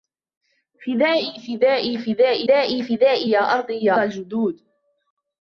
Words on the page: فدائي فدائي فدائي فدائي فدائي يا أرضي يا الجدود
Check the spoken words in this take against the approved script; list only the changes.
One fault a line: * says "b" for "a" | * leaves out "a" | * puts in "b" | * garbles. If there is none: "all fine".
all fine